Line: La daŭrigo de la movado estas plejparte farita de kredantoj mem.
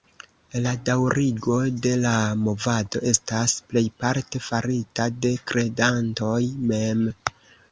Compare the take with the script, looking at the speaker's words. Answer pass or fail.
pass